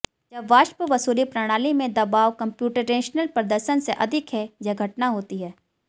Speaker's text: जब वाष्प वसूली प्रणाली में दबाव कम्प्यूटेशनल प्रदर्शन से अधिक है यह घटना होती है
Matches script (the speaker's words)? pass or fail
pass